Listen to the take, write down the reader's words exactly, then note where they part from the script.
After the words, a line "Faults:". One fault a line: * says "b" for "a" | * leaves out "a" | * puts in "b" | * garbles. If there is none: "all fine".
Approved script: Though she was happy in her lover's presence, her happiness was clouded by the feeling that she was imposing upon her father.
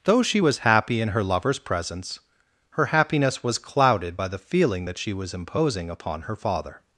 Though she was happy in her lover's presence, her happiness was clouded by the feeling that she was imposing upon her father.
Faults:
all fine